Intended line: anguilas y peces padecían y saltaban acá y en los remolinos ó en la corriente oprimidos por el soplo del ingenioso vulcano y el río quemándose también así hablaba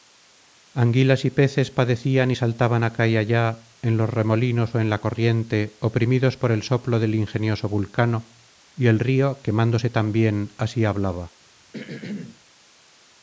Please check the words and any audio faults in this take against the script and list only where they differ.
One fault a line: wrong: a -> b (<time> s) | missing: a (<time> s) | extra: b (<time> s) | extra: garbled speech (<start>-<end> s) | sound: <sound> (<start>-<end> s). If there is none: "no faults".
extra: allá (3.2 s)
sound: throat clearing (11.7-12.4 s)